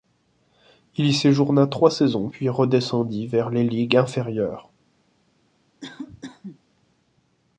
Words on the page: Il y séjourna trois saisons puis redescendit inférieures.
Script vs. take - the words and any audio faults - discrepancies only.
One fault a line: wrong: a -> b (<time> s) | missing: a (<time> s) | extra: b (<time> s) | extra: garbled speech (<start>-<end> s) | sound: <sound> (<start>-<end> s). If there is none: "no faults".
extra: vers les ligues (3.3 s)
sound: cough (5.8-6.6 s)